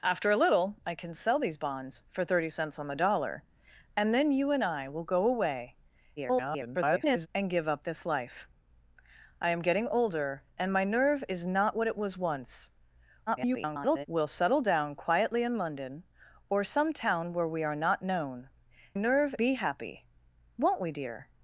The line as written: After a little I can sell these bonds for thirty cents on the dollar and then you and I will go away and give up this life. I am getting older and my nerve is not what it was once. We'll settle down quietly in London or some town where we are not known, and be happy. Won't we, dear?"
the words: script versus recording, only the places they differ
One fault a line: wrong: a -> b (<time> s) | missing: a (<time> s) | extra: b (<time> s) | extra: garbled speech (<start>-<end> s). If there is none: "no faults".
extra: garbled speech (6.2-7.3 s)
extra: garbled speech (13.3-14.1 s)
wrong: and -> nerve (19.0 s)